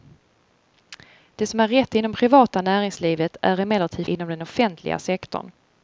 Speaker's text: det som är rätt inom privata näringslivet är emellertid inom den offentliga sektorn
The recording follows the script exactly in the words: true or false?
true